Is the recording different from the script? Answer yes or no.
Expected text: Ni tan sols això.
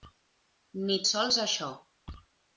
yes